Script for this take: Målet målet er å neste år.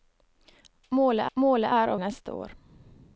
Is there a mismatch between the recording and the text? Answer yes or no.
no